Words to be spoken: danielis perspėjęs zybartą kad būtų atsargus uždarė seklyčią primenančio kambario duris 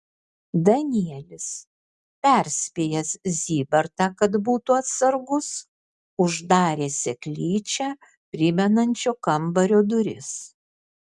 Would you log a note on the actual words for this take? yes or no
no